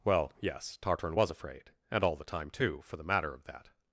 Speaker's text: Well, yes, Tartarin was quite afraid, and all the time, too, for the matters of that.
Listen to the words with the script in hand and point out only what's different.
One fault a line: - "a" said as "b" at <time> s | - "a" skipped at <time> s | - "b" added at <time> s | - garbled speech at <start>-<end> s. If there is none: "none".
- "quite" skipped at 1.3 s
- "matters" said as "matter" at 3.0 s